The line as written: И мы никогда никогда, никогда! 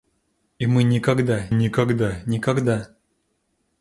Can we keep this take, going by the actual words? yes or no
yes